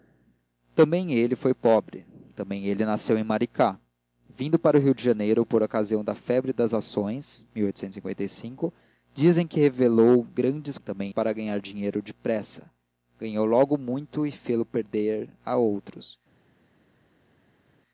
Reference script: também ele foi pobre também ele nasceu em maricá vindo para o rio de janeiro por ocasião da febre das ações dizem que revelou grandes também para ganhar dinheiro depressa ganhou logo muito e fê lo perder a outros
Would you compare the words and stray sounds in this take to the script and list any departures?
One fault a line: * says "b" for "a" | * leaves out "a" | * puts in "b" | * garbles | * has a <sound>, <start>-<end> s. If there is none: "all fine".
all fine